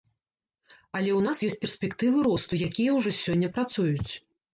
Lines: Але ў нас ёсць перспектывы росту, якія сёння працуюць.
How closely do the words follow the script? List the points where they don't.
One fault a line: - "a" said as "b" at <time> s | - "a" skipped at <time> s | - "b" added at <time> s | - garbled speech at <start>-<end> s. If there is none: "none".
- "ўжо" added at 3.0 s